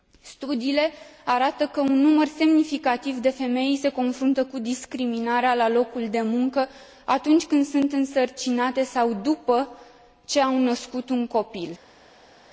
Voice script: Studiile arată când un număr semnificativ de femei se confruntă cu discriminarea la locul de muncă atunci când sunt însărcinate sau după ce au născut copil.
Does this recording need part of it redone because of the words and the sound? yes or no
yes